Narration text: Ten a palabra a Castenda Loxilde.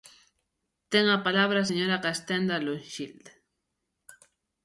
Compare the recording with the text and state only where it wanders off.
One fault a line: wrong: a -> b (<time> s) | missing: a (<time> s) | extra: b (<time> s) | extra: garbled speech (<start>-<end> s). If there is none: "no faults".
extra: señora (1.7 s)